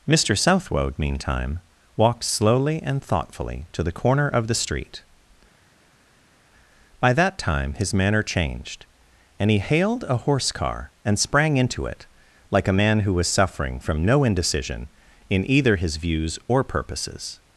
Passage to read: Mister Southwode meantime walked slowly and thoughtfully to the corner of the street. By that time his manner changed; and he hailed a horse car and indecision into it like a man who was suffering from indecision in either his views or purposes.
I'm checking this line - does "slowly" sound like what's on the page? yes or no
yes